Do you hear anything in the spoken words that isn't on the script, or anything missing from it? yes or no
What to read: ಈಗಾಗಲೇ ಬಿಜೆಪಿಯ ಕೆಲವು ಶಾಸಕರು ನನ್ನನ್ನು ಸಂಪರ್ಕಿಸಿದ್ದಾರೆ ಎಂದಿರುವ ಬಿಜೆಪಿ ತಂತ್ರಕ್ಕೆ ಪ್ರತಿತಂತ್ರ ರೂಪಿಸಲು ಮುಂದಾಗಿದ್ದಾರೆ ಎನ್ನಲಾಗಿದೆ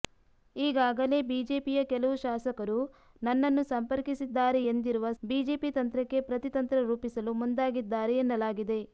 no